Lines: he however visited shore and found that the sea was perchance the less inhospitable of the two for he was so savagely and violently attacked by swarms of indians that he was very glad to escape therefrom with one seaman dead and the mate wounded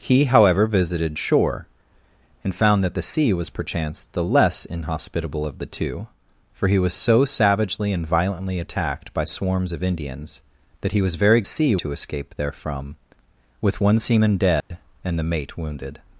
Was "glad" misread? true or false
true